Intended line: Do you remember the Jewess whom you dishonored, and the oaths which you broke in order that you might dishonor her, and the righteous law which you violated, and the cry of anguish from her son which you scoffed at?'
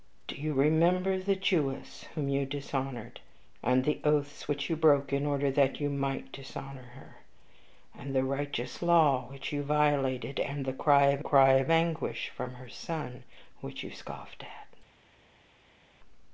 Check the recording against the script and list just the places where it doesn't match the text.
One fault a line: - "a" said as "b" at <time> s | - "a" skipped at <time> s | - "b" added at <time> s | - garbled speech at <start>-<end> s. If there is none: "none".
- "cry of" added at 11.2 s